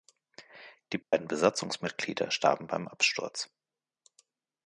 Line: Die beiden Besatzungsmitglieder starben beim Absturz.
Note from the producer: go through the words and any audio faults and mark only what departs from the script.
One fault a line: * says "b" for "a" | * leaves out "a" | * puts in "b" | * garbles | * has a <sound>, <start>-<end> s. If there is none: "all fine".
* has a dropout, 1.0-1.1 s